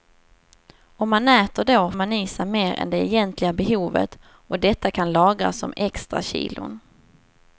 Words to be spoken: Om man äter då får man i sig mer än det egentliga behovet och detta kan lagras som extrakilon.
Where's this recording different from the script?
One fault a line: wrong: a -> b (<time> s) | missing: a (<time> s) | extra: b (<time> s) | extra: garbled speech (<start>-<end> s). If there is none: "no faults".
missing: får (1.9 s)